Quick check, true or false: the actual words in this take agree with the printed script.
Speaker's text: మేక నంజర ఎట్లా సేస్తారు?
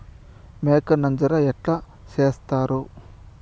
true